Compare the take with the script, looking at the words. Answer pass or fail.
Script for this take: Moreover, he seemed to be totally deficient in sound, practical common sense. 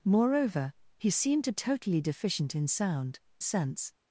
fail